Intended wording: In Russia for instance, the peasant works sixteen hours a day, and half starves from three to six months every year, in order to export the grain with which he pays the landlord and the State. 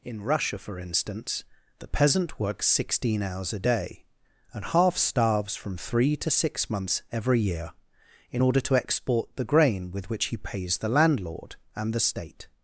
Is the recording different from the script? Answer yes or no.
no